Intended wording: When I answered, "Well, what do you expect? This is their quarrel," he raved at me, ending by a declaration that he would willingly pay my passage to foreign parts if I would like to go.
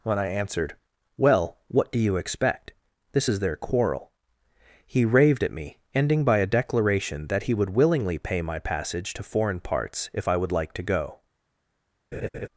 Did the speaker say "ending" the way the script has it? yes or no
yes